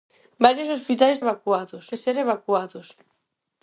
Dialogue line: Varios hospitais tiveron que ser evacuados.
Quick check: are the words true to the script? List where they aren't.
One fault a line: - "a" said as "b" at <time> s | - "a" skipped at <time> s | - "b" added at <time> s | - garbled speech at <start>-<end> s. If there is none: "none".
- "tiveron" said as "evacuados" at 1.2 s